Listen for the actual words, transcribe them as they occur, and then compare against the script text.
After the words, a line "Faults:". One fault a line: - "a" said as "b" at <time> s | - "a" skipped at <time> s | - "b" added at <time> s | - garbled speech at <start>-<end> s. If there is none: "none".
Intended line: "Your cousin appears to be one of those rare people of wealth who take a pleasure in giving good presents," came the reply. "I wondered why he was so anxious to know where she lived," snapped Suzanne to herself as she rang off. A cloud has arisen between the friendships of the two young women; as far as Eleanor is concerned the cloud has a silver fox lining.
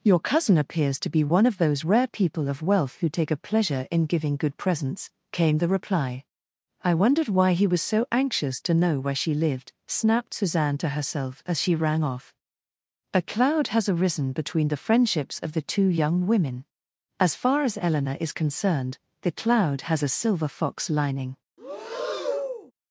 "Your cousin appears to be one of those rare people of wealth who take a pleasure in giving good presents," came the reply. "I wondered why he was so anxious to know where she lived," snapped Suzanne to herself as she rang off. A cloud has arisen between the friendships of the two young women; as far as Eleanor is concerned the cloud has a silver fox lining.
Faults:
none